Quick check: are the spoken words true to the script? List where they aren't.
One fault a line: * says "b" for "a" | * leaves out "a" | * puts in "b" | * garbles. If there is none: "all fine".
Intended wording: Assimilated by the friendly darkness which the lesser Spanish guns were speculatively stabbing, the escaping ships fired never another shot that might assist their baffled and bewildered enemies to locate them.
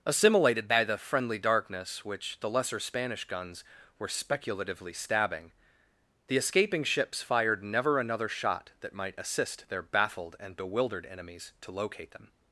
all fine